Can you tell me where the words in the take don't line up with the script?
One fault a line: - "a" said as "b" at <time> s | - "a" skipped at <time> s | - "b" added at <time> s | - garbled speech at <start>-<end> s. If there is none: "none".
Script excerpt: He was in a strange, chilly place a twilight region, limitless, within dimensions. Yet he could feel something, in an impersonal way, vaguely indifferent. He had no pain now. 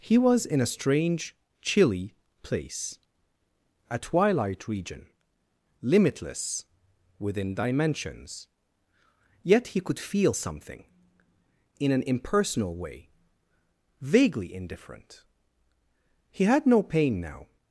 none